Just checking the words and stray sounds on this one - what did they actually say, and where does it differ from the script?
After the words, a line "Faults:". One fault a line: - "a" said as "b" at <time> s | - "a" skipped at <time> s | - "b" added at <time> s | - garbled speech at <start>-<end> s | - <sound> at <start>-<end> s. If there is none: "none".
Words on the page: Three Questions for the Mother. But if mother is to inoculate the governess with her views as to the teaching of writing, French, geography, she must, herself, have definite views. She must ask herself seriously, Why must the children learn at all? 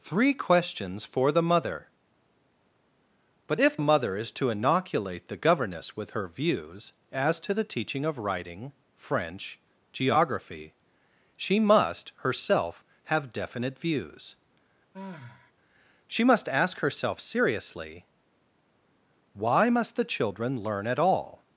Three Questions for the Mother. But if mother is to inoculate the governess with her views as to the teaching of writing, French, geography, she must, herself, have definite views. She must ask herself seriously, Why must the children learn at all?
Faults:
- sigh at 14.9-15.5 s